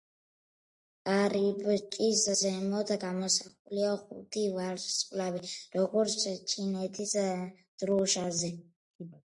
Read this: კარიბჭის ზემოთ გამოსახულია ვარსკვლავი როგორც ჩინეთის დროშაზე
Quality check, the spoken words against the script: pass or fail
fail